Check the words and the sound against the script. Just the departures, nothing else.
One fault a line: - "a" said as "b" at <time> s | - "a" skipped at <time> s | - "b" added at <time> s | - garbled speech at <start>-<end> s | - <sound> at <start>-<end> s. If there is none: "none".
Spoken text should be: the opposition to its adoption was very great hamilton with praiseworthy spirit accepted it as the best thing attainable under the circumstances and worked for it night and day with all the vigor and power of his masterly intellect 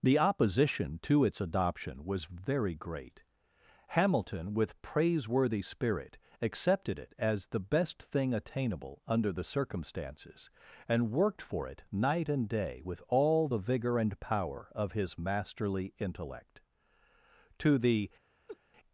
- "to the" added at 17.6 s
- laugh at 18.5-18.6 s